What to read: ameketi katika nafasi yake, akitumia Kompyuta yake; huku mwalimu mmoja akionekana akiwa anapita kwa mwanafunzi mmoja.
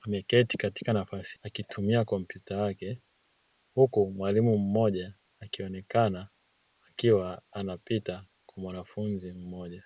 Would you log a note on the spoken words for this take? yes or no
yes